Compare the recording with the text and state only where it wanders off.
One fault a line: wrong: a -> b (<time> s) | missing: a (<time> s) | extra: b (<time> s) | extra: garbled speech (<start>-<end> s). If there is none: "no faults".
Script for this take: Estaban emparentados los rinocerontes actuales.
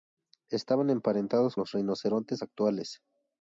no faults